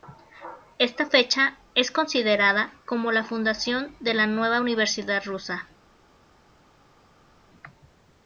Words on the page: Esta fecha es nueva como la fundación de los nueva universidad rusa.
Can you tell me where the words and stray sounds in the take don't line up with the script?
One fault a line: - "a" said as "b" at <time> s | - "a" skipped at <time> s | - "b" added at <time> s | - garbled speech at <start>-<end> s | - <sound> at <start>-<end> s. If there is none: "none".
- "nueva" said as "considerada" at 1.9 s
- "los" said as "la" at 4.1 s